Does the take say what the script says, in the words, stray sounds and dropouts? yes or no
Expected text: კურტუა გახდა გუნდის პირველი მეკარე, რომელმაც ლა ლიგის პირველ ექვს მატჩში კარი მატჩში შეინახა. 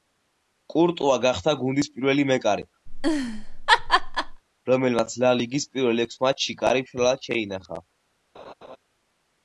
no